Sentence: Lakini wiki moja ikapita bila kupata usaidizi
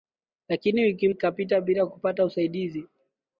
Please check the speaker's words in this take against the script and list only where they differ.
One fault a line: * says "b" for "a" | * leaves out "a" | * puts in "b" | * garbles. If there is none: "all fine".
* leaves out "moja"